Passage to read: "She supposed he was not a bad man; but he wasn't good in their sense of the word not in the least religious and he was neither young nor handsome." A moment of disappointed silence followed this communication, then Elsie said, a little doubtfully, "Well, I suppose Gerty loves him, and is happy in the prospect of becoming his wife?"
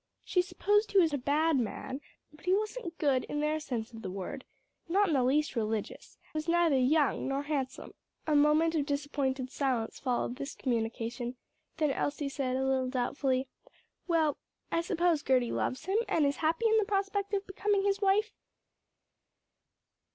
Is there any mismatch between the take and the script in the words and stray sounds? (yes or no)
yes